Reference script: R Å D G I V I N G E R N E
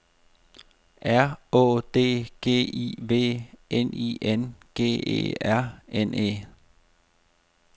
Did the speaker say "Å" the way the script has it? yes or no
yes